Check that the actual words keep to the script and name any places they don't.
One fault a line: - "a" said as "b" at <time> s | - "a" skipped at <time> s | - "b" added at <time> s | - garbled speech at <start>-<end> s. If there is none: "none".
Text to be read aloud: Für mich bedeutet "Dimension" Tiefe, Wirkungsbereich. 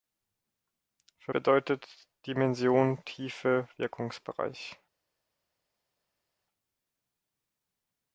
- "mich" skipped at 1.3 s